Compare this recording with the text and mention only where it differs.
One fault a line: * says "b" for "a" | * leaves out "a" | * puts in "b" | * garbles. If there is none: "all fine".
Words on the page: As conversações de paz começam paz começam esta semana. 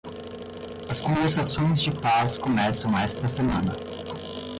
* leaves out "paz começam"